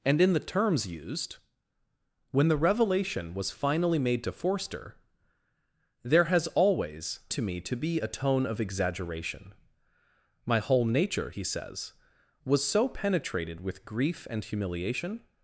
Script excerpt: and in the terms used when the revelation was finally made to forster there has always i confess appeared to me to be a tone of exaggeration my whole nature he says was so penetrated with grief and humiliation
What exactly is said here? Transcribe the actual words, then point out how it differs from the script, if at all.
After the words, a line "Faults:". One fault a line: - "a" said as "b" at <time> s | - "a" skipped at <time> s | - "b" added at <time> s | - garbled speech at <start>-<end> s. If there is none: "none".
and in the terms used when the revelation was finally made to forster there has always to me to be a tone of exaggeration my whole nature he says was so penetrated with grief and humiliation
Faults:
- "i confess appeared" skipped at 7.2 s